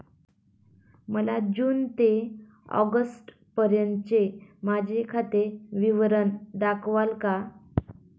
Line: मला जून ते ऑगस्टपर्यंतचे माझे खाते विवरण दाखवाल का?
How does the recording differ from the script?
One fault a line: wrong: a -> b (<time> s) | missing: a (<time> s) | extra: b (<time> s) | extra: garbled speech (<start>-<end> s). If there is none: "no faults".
no faults